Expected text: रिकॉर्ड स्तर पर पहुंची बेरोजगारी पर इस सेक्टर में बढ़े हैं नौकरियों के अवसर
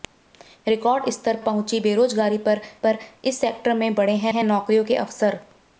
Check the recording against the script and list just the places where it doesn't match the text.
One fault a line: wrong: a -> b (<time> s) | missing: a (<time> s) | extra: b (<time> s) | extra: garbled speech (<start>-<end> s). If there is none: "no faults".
missing: पर (1.4 s)
extra: पर (2.9 s)
extra: हैं (4.3 s)